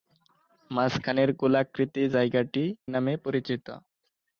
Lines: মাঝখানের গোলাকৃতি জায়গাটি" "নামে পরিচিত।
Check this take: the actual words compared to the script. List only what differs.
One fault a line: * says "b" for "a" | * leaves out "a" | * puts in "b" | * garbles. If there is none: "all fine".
all fine